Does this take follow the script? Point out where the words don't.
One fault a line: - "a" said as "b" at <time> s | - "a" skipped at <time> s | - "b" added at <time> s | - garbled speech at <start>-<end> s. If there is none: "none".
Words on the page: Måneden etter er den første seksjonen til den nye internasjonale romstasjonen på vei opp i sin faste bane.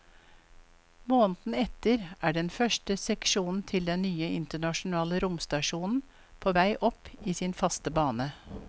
none